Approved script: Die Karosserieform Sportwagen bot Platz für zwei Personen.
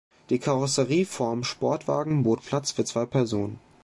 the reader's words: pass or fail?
pass